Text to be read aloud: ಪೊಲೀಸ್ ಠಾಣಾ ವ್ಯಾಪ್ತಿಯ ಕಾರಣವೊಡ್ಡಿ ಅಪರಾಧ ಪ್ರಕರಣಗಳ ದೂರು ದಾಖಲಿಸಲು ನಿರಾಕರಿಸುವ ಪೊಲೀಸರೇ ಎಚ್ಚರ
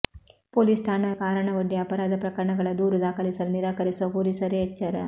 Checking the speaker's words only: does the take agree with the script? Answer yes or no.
no